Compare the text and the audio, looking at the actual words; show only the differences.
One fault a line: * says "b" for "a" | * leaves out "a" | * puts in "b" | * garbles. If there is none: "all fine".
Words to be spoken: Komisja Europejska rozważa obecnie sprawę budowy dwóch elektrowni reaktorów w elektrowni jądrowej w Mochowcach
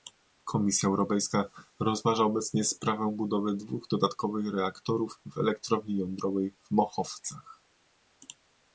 * says "dodatkowych" for "elektrowni"